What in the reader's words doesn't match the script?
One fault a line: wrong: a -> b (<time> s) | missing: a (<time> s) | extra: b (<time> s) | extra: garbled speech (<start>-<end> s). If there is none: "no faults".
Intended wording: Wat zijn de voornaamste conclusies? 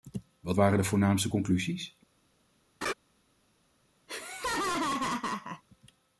wrong: zijn -> waren (0.5 s)